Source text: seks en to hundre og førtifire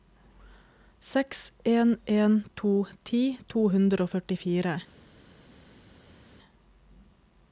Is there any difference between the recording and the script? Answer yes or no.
yes